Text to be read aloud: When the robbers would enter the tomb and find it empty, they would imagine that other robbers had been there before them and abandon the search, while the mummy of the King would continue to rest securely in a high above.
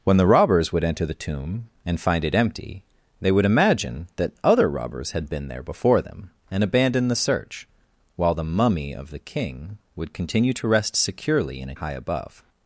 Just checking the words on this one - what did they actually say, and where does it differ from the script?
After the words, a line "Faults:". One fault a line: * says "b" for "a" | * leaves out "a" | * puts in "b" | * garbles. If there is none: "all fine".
When the robbers would enter the tomb and find it empty, they would imagine that other robbers had been there before them and abandon the search, while the mummy of the King would continue to rest securely in a high above.
Faults:
all fine